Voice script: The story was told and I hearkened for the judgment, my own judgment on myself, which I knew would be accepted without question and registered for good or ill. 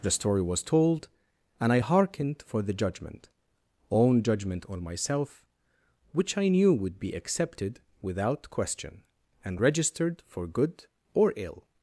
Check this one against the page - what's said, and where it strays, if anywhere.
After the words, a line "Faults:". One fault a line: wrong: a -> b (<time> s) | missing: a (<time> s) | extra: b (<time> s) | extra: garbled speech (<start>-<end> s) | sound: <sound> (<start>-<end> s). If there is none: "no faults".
The story was told and I hearkened for the judgment, own judgment on myself, which I knew would be accepted without question and registered for good or ill.
Faults:
missing: my (3.3 s)